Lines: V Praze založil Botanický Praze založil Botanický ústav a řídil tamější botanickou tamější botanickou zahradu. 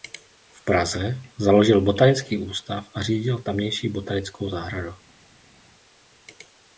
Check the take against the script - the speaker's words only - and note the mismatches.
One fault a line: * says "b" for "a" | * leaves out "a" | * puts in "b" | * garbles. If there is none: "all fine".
* leaves out "Praze založil Botanický"
* leaves out "tamější botanickou"